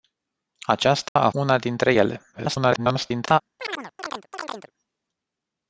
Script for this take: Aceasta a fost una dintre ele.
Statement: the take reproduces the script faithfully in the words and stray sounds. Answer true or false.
false